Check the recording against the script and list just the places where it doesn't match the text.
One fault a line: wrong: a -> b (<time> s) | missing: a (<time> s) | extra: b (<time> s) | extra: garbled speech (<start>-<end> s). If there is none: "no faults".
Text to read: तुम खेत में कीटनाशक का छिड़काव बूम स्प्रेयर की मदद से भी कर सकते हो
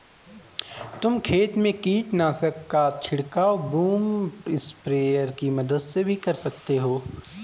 no faults